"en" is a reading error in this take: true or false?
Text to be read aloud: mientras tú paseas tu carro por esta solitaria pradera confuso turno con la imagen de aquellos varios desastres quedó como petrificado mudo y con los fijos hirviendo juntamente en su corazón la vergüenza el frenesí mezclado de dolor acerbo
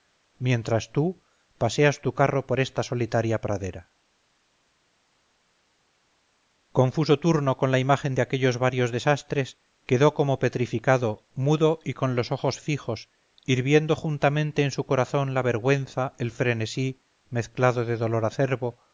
false